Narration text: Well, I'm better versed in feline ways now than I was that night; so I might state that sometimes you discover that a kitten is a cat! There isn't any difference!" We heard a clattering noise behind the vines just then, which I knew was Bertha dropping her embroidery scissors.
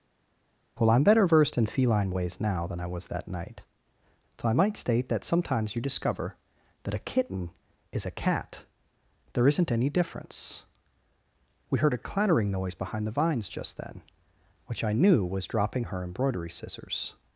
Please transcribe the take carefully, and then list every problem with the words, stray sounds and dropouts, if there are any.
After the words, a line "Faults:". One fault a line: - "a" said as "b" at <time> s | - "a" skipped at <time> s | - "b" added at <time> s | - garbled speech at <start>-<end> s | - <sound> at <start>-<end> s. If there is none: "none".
Well, I'm better versed in feline ways now than I was that night; so I might state that sometimes you discover that a kitten is a cat! There isn't any difference!" We heard a clattering noise behind the vines just then, which I knew was dropping her embroidery scissors.
Faults:
- "Bertha" skipped at 15.5 s